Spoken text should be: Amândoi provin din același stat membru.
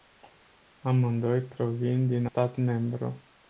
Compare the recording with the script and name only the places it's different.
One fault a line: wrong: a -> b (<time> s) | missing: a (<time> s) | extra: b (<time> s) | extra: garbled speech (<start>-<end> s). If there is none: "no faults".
missing: același (2.2 s)